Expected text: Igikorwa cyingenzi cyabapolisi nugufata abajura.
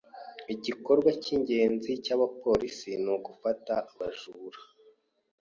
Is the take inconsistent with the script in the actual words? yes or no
no